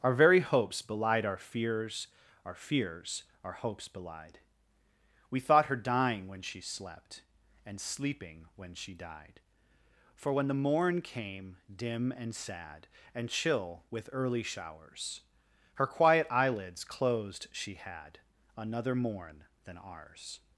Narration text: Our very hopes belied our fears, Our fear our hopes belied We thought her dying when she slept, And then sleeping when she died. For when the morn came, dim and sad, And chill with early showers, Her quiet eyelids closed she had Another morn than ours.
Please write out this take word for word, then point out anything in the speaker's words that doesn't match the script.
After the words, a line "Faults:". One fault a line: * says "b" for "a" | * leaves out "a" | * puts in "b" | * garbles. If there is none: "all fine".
Our very hopes belied our fears, Our fears our hopes belied We thought her dying when she slept, And sleeping when she died. For when the morn came, dim and sad, And chill with early showers, Her quiet eyelids closed she had Another morn than ours.
Faults:
* says "fears" for "fear"
* leaves out "then"